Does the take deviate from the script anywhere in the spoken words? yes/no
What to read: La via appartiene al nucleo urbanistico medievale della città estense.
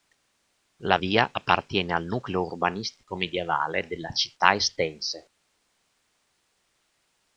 no